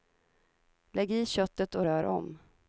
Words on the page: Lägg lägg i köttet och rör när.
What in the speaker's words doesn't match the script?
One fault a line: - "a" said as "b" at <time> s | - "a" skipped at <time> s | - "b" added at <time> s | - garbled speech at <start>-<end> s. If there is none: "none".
- "lägg" skipped at 1.1 s
- "när" said as "om" at 2.0 s